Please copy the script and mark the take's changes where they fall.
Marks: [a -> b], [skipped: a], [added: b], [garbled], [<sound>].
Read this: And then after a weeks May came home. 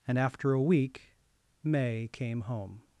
And [skipped: then] after a [weeks -> week] May came home.